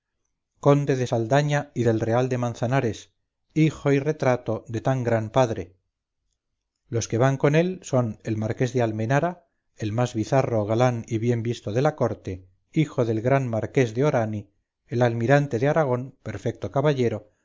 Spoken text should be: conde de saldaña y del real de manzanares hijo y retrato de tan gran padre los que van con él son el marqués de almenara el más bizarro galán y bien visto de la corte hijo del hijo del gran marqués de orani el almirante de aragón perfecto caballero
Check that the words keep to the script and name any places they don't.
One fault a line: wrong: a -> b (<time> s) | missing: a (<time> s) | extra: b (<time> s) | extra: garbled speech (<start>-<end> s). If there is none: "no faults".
missing: hijo del (13.2 s)